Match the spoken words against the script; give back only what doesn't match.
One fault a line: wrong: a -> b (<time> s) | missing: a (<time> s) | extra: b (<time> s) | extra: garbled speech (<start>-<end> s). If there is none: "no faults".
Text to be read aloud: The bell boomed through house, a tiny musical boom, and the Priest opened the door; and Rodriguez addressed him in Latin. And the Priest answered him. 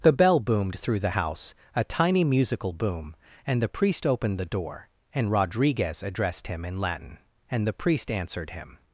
extra: the (1.0 s)